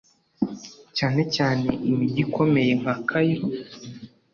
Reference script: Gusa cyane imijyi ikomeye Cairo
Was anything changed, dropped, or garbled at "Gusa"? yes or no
yes